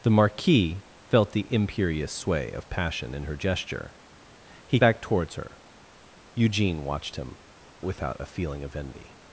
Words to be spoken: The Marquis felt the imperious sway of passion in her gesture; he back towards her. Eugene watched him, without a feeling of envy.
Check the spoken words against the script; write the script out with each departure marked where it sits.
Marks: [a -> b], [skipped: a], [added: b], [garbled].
The Marquis felt the imperious sway of passion in her gesture; he back towards her. Eugene watched him, without a feeling of envy.